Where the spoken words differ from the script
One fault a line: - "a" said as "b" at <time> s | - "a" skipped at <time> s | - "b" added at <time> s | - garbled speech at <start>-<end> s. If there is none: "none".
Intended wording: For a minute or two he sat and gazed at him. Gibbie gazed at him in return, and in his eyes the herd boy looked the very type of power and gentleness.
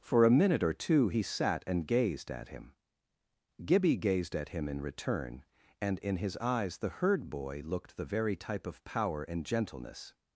none